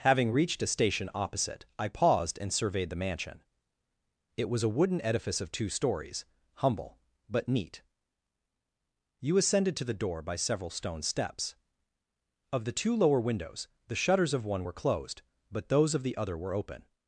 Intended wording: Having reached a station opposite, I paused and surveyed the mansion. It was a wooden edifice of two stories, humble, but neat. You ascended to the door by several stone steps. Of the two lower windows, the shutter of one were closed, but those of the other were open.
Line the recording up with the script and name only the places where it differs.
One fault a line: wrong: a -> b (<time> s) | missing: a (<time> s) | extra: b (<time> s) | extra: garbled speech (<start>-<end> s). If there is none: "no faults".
wrong: shutter -> shutters (13.9 s)